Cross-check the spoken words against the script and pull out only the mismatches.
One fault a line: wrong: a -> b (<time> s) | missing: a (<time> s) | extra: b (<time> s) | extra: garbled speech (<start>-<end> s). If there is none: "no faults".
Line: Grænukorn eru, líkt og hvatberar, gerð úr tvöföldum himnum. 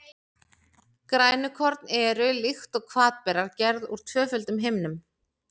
no faults